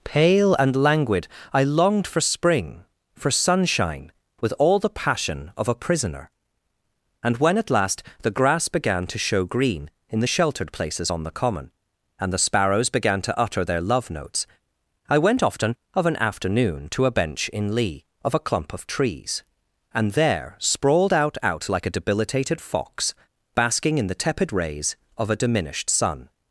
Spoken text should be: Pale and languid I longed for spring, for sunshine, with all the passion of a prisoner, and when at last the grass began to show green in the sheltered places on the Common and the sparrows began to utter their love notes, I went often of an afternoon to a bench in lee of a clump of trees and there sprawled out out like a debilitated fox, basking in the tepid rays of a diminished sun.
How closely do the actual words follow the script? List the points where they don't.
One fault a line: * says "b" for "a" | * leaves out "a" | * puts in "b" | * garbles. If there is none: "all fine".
all fine